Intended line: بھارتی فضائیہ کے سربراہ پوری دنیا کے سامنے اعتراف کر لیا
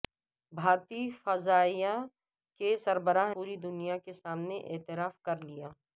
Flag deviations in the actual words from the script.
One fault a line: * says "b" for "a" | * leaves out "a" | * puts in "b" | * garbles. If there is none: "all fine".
all fine